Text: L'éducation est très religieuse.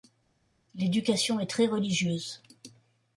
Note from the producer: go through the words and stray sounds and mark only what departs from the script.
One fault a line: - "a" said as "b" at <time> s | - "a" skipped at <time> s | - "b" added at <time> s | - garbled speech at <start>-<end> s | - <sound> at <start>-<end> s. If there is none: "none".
none